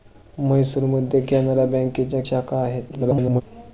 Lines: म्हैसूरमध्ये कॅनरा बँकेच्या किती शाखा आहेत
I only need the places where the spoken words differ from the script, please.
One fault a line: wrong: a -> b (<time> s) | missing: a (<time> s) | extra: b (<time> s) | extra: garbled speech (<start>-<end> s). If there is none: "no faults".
missing: किती (2.2 s)
extra: garbled speech (2.9-3.4 s)